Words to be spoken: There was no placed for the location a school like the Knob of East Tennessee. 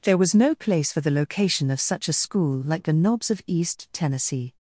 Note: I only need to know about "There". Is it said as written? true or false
true